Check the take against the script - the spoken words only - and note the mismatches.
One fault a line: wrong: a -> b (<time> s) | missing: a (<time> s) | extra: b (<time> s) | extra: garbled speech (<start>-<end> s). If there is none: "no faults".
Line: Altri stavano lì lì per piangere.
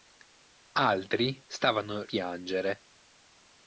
missing: lì lì per (2.0 s)